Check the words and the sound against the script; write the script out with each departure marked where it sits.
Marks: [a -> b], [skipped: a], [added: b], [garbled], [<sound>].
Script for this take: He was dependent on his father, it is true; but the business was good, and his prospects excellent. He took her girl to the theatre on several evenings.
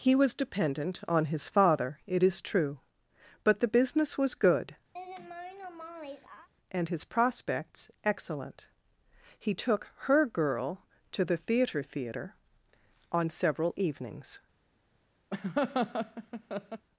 He was dependent on his father, it is true; but the business was good, [laugh] and his prospects excellent. He took her girl to the theatre [added: theatre] on several evenings. [laugh]